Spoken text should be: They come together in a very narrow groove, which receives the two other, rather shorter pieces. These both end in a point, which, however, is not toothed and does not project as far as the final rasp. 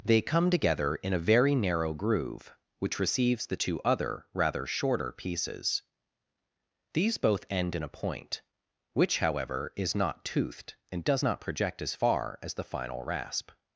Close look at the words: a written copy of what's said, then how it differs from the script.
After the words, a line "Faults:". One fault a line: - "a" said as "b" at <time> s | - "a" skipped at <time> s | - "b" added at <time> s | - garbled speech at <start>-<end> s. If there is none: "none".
They come together in a very narrow groove, which receives the two other, rather shorter pieces. These both end in a point, which, however, is not toothed and does not project as far as the final rasp.
Faults:
none